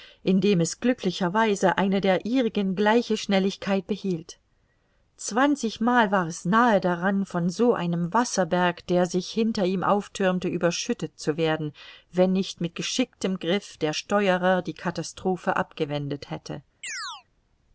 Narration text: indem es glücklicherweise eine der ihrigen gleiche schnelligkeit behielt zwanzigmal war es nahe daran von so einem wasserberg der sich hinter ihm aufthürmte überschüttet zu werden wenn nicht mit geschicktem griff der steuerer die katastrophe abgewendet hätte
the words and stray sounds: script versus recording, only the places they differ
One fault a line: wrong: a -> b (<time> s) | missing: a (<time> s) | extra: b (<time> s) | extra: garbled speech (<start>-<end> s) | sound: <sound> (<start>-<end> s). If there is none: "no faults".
sound: chirp (16.8-17.2 s)